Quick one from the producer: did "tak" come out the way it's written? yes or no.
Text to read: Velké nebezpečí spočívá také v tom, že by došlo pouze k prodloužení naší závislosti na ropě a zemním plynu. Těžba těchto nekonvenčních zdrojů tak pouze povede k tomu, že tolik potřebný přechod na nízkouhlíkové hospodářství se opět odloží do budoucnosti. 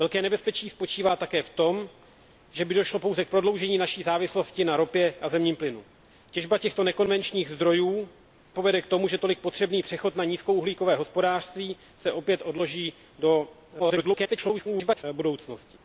no